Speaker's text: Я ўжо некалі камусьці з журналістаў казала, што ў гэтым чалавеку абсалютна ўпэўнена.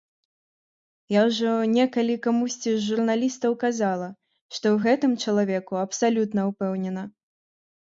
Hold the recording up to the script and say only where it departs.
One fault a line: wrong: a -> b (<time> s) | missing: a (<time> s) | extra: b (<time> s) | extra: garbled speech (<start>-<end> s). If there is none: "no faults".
no faults